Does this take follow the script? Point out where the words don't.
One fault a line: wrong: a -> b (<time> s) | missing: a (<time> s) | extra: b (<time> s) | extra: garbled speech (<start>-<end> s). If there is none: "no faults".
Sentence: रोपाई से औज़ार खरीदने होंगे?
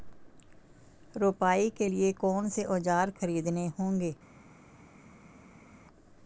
extra: के लिए कौन (1.8 s)